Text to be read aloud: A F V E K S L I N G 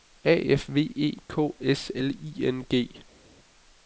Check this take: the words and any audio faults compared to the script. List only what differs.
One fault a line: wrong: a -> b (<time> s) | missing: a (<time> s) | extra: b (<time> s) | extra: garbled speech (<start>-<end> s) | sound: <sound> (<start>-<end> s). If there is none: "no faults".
no faults